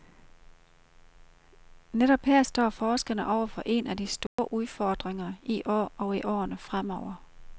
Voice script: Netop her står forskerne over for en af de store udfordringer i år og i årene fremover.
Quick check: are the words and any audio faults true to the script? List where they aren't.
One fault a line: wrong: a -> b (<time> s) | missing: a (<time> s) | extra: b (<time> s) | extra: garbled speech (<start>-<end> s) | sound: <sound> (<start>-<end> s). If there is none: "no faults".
sound: dropout (4.3-4.4 s)